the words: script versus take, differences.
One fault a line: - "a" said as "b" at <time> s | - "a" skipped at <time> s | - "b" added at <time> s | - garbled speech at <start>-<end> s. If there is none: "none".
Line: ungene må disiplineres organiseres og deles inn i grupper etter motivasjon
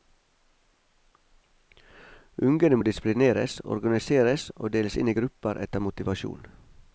none